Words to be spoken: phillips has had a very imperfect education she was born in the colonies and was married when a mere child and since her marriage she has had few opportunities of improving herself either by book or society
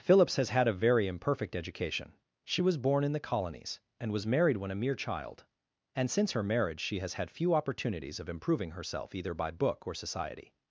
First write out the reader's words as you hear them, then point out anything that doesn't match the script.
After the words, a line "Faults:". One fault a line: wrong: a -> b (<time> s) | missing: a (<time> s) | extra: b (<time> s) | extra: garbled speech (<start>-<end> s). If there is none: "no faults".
phillips has had a very imperfect education she was born in the colonies and was married when a mere child and since her marriage she has had few opportunities of improving herself either by book or society
Faults:
no faults